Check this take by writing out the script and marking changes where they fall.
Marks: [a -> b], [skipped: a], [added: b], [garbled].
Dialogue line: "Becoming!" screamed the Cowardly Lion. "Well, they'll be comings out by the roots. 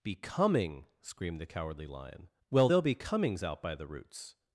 "Becoming!" screamed the Cowardly Lion. "Well, they'll be comings out by the roots.